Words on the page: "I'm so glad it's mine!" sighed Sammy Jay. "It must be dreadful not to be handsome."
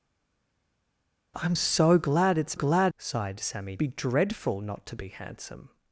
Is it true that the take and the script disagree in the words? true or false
true